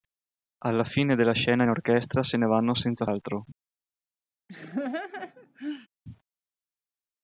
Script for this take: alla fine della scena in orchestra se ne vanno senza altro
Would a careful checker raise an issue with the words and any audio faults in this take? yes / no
yes